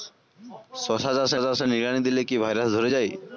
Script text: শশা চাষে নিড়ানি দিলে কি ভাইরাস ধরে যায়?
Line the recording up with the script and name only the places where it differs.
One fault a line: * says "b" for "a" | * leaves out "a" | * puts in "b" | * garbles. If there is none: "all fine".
* puts in "চাষে"